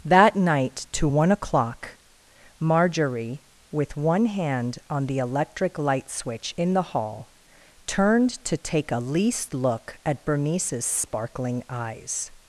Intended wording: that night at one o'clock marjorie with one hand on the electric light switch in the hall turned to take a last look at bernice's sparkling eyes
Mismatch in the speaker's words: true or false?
true